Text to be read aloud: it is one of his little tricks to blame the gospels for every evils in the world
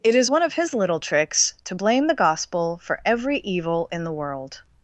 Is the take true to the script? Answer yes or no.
no